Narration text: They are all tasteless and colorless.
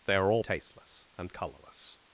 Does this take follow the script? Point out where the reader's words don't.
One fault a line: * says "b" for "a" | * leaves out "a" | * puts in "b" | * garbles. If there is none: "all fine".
all fine